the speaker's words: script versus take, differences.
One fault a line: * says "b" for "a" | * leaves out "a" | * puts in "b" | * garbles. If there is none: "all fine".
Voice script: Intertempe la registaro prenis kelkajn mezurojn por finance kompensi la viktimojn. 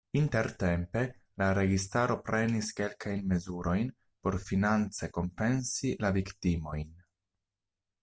all fine